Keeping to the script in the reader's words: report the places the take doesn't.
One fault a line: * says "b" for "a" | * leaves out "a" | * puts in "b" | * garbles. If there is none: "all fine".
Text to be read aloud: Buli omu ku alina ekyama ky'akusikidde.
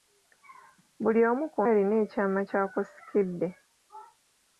all fine